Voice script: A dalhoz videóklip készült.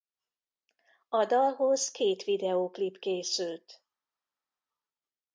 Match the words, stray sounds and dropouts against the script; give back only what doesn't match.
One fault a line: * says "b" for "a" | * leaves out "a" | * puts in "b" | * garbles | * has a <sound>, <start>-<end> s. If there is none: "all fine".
* puts in "két"